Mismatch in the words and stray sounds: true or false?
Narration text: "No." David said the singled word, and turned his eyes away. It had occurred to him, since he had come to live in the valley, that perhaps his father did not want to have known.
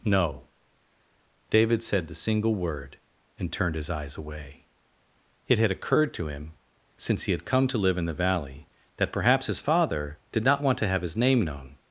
true